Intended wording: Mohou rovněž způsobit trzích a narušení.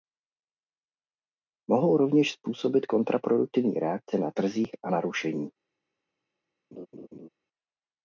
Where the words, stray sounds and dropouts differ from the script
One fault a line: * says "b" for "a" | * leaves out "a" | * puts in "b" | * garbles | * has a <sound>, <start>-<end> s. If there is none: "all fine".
* puts in "kontraproduktivní reakce na"
* has a laugh, 6.7-7.3 s